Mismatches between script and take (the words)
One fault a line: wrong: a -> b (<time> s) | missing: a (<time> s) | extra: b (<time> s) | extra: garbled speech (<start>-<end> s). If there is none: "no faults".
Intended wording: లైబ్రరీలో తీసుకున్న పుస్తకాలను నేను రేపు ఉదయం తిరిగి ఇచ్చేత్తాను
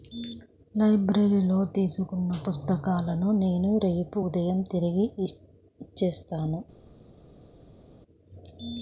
no faults